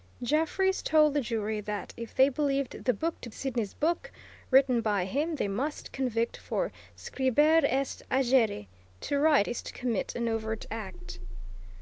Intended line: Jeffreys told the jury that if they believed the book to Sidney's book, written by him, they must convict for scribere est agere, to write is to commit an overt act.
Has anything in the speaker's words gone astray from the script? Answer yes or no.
no